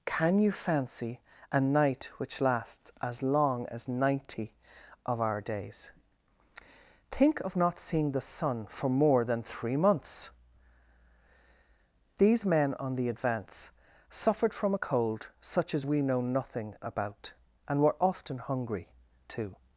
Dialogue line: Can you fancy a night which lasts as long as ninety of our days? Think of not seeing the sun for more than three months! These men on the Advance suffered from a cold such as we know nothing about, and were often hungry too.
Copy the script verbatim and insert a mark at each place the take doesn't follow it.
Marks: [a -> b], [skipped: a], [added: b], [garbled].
Can you fancy a night which lasts as long as ninety of our days? Think of not seeing the sun for more than three months! These men on the Advance suffered from a cold such as we know nothing about, and were often hungry too.